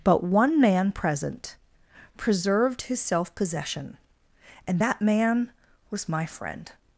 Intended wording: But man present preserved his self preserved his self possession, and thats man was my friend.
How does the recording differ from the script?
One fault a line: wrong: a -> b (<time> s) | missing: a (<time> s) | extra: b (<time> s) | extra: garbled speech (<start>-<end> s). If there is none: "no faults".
extra: one (0.2 s)
missing: preserved his self (3.3 s)
wrong: thats -> that (4.8 s)